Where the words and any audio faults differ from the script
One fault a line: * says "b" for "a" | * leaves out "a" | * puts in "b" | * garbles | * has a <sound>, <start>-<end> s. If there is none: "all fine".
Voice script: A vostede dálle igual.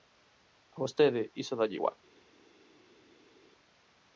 * puts in "iso"